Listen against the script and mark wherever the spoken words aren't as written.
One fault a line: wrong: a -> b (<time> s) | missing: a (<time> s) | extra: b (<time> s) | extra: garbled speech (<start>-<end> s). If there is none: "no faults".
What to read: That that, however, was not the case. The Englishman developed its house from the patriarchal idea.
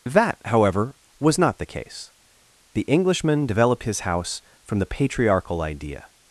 missing: that (0.4 s)
wrong: its -> his (3.8 s)